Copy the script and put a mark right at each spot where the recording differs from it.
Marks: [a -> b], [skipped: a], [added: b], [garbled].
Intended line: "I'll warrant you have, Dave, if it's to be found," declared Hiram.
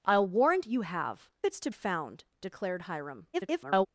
"I'll warrant you have, [skipped: Dave, if] it's to [skipped: be] found," declared Hiram. [garbled]